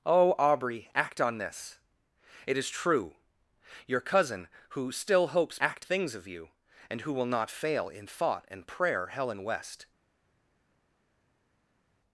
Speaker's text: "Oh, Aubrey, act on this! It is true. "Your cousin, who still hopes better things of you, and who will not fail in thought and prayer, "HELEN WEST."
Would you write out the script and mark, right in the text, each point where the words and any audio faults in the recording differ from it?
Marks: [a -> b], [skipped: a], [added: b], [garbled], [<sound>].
"Oh, Aubrey, act on this! It is true. "Your cousin, who still hopes [better -> act] things of you, and who will not fail in thought and prayer, "HELEN WEST."